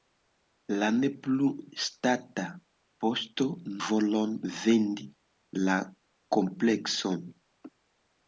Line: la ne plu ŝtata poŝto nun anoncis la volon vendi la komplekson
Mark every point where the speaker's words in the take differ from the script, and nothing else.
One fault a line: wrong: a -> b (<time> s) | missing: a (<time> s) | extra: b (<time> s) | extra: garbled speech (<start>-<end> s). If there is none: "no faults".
missing: nun anoncis la (3.5 s)